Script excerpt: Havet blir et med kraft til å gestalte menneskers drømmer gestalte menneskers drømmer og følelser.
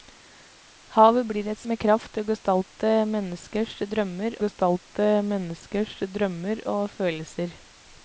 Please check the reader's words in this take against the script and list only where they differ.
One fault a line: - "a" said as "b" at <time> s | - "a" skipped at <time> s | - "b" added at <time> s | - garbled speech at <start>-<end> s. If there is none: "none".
none